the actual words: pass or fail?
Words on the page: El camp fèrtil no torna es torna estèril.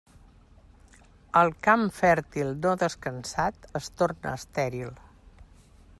fail